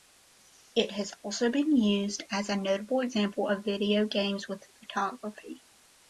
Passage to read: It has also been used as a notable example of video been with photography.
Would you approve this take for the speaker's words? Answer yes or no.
no